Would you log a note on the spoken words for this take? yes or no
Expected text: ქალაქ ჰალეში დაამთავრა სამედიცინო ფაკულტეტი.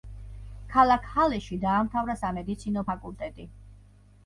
no